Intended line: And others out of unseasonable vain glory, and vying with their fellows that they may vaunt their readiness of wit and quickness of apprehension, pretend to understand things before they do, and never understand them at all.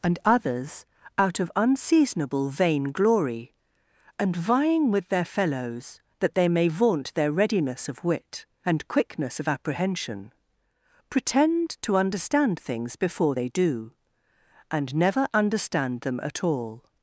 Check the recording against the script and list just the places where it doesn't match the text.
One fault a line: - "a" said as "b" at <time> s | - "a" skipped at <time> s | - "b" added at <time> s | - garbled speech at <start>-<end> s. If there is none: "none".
none